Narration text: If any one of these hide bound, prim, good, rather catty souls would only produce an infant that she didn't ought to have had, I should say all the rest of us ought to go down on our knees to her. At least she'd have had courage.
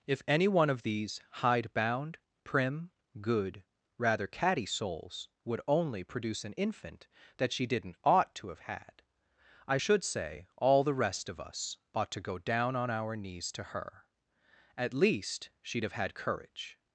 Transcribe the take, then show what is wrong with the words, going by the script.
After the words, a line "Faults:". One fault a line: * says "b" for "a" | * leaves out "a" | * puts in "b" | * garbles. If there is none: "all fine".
If any one of these hide bound, prim, good, rather catty souls would only produce an infant that she didn't ought to have had, I should say all the rest of us ought to go down on our knees to her. At least she'd have had courage.
Faults:
all fine